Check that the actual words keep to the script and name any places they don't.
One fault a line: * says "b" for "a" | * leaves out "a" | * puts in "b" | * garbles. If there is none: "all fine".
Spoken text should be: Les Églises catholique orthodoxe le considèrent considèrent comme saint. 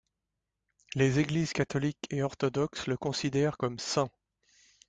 * puts in "et"
* leaves out "considèrent"